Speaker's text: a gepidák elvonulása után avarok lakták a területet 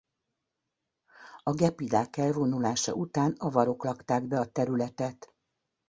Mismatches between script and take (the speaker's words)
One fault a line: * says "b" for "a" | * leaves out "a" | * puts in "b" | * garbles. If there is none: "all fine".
* puts in "be"